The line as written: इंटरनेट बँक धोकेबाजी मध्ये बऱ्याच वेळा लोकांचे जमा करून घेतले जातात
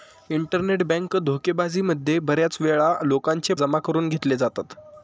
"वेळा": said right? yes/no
yes